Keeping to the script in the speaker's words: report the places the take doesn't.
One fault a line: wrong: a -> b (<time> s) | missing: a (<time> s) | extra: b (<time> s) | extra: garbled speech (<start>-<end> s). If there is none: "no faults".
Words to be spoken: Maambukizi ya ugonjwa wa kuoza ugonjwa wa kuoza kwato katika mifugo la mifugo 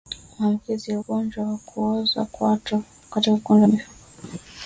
missing: ugonjwa wa kuoza (2.2 s)
wrong: mifugo -> kundi (3.4 s)